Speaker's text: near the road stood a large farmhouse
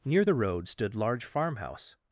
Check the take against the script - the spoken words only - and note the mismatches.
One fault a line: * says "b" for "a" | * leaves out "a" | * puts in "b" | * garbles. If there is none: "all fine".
* leaves out "a"